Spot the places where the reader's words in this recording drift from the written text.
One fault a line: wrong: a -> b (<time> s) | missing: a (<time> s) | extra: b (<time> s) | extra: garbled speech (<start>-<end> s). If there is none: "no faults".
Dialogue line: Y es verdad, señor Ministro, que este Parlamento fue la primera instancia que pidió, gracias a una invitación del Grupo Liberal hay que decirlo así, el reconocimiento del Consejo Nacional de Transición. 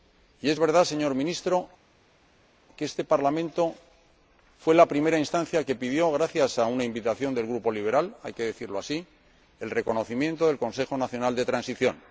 no faults